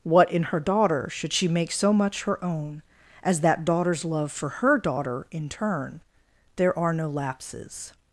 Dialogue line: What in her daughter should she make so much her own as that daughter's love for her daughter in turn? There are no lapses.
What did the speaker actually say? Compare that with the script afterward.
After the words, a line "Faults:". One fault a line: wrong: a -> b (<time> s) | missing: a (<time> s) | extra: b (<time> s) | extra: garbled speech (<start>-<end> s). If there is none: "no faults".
What in her daughter should she make so much her own as that daughter's love for her daughter in turn? There are no lapses.
Faults:
no faults